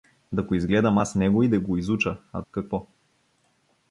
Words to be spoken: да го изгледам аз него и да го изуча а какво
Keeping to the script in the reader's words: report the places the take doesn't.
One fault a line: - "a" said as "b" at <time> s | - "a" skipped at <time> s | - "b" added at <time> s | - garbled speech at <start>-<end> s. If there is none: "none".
none